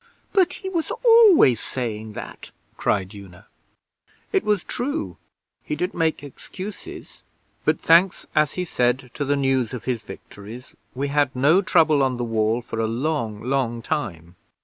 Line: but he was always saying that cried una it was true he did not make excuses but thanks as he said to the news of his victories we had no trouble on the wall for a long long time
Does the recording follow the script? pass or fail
fail